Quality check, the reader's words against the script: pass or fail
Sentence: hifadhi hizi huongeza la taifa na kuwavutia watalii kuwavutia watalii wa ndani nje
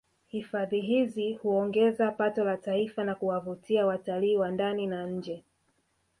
fail